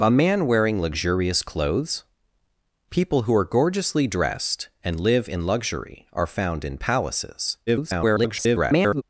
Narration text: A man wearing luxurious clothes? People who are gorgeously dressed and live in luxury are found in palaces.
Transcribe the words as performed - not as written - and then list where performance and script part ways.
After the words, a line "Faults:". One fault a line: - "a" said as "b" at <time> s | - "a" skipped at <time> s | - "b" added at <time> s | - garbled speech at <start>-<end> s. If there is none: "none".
A man wearing luxurious clothes? People who are gorgeously dressed and live in luxury are found in palaces. [garbled]
Faults:
- garbled speech at 7.7-9.0 s